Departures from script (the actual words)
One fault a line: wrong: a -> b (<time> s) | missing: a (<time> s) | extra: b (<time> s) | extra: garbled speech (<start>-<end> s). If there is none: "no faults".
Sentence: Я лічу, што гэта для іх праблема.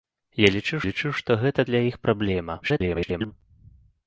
extra: лічу (0.9 s)
extra: garbled speech (2.6-3.3 s)